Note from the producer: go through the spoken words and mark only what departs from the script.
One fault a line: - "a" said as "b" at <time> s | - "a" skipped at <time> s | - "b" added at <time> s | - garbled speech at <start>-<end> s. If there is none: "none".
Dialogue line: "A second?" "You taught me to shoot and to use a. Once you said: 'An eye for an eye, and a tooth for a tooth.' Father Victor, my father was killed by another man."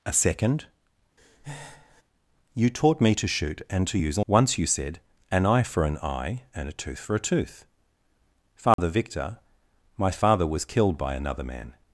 none